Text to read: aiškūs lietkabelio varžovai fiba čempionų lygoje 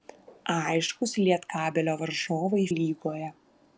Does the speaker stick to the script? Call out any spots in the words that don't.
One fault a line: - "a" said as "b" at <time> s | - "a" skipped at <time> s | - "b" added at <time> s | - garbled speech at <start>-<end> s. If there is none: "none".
- "fiba čempionų" skipped at 2.6 s